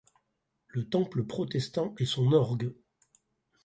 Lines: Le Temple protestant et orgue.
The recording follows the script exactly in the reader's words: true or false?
false